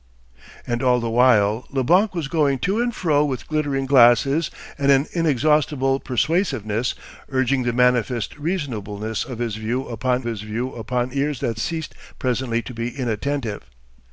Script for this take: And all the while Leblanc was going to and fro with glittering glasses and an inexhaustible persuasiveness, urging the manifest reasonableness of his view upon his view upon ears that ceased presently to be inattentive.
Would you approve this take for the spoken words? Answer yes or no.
yes